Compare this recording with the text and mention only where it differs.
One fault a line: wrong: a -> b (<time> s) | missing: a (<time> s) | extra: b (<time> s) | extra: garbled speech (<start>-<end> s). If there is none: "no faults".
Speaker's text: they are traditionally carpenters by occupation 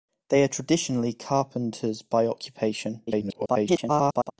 extra: garbled speech (3.1-4.3 s)